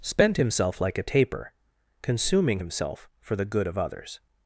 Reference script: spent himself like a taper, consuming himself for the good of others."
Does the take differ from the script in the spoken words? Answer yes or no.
no